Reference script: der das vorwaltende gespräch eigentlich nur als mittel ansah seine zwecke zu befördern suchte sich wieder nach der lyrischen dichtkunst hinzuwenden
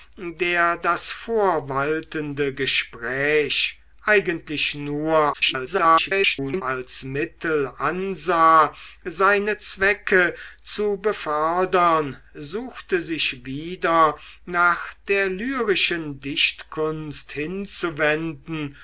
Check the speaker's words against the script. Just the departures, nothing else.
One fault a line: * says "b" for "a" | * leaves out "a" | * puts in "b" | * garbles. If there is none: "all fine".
* garbles